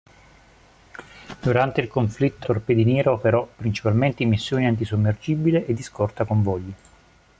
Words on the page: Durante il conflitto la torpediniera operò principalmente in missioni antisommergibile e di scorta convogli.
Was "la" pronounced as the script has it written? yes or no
no